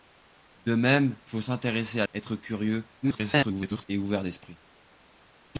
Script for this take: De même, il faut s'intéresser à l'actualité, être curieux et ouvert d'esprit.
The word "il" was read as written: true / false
false